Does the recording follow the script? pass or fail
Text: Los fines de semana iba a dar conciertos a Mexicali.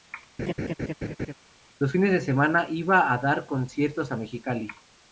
pass